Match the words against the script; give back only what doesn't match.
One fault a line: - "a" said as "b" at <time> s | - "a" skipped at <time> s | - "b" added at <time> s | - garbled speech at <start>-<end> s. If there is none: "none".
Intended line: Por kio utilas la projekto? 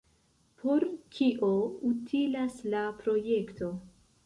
none